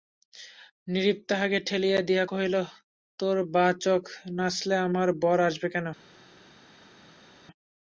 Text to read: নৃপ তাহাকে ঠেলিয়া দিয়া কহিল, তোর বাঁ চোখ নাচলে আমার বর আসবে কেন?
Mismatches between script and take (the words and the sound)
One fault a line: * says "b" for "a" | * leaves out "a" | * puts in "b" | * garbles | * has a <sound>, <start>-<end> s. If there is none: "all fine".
all fine